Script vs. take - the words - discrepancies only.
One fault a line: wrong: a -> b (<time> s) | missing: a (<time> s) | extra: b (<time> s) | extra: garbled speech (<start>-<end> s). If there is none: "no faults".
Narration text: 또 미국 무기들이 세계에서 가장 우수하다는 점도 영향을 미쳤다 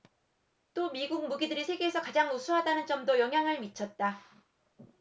no faults